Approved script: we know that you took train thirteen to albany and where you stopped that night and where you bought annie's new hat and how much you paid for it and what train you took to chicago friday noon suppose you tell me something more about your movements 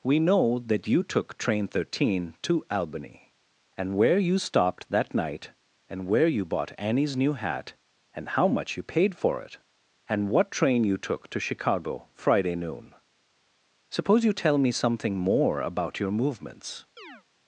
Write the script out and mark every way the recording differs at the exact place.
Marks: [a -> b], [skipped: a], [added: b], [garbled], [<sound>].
we know that you took train thirteen to albany and where you stopped that night and where you bought annie's new hat and how much you paid for it and what train you took to chicago friday noon suppose you tell me something more about your movements [chirp]